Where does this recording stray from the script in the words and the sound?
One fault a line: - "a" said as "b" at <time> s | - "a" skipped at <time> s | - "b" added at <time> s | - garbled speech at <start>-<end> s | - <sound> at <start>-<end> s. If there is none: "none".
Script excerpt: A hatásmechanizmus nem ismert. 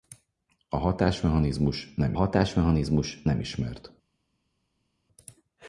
- "hatásmechanizmus nem" added at 2.1 s